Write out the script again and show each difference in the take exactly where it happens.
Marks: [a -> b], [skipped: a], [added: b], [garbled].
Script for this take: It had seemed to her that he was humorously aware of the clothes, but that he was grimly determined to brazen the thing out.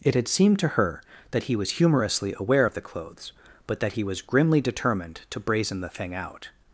It had seemed to her that he was humorously aware of the clothes, but that he was grimly determined to brazen the thing out.